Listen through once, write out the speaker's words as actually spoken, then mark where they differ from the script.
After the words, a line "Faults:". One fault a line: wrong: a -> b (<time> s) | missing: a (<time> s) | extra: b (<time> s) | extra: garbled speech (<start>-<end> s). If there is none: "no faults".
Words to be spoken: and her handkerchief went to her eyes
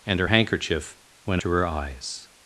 and her handkerchief went to her eyes
Faults:
no faults